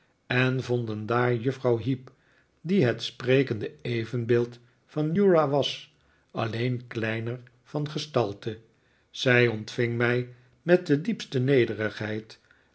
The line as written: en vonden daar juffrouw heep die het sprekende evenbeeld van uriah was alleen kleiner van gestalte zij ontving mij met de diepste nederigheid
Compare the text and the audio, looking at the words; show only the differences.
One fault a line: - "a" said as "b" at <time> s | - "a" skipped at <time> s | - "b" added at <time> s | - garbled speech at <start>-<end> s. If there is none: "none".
none